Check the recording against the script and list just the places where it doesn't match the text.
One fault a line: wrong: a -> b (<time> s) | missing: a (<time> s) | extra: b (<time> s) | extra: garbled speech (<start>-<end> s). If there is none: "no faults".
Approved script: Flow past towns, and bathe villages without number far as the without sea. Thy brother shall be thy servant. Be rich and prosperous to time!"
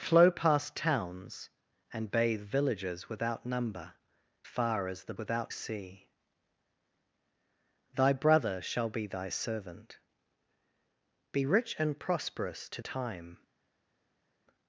no faults